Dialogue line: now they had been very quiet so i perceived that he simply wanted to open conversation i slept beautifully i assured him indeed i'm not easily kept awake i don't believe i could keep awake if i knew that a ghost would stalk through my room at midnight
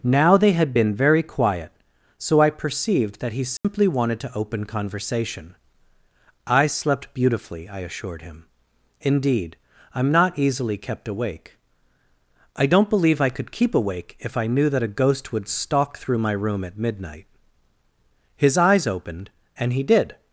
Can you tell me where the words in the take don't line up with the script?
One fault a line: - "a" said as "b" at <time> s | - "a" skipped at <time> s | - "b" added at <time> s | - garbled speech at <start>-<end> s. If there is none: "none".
- "his eyes opened and he did" added at 18.4 s